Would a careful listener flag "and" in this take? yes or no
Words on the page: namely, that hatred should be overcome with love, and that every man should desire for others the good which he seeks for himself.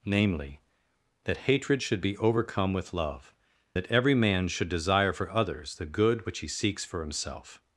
yes